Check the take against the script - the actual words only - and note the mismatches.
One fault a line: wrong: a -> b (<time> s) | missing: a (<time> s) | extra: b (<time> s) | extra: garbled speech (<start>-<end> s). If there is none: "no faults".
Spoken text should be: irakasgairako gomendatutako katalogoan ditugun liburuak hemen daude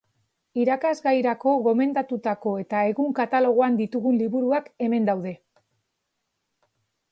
extra: eta egun (2.6 s)